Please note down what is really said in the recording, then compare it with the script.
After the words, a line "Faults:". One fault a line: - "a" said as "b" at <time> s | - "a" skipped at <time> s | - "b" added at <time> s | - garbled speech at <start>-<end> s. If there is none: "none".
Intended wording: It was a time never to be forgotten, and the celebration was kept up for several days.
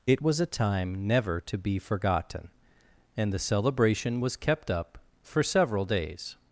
It was a time never to be forgotten, and the celebration was kept up for several days.
Faults:
none